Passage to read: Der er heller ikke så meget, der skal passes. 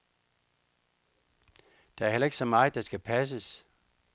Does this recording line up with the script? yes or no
yes